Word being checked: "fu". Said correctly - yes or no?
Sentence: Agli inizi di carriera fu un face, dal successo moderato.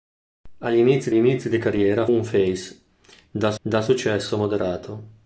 no